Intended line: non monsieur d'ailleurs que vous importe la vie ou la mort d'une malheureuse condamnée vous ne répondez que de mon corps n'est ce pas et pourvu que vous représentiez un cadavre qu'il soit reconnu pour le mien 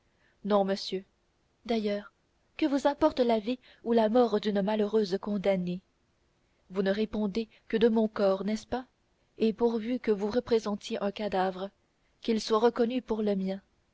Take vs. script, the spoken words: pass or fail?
pass